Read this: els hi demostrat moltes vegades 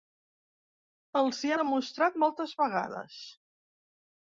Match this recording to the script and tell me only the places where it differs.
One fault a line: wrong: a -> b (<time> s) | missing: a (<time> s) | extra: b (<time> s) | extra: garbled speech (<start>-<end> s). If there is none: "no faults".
no faults